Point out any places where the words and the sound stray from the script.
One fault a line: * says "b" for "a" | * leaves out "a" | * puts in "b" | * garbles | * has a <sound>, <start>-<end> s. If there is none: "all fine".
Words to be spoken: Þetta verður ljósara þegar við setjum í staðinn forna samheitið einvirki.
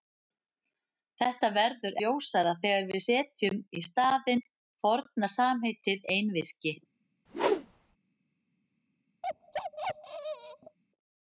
* has a whoosh, 7.3-8.0 s
* has a bark, 9.2-10.8 s